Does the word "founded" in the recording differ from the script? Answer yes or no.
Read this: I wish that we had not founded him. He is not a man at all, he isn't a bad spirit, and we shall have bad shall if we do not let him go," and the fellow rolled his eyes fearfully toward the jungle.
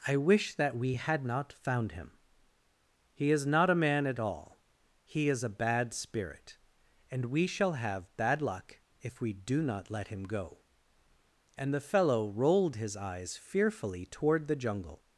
yes